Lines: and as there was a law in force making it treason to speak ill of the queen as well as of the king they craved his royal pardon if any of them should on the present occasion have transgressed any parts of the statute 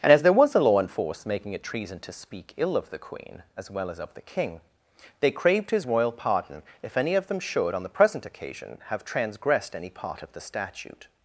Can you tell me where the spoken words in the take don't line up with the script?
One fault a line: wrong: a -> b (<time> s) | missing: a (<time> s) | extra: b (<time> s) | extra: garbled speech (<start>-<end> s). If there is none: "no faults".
wrong: parts -> part (9.9 s)